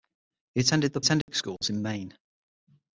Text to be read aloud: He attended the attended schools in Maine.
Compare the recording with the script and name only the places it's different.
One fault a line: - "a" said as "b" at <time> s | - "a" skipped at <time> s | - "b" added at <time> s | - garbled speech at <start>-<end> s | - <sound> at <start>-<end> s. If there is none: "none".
- dropout at 1.2-1.3 s